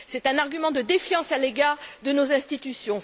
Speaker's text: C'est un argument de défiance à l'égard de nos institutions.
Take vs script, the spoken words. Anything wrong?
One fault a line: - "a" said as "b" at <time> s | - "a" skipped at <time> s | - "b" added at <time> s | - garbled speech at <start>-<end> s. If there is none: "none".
none